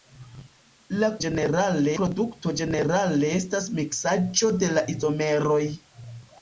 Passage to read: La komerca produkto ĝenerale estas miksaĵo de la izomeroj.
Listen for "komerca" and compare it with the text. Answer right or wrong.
wrong